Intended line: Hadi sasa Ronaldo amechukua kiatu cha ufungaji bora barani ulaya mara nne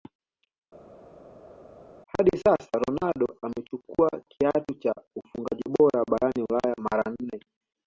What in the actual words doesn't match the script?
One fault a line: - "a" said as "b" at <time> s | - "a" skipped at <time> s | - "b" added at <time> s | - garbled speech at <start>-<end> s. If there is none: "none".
none